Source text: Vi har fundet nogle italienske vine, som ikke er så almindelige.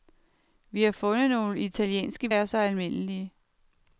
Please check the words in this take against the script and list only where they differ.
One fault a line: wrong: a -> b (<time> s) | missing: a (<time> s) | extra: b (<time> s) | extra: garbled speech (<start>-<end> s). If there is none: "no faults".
missing: vine som ikke (2.3 s)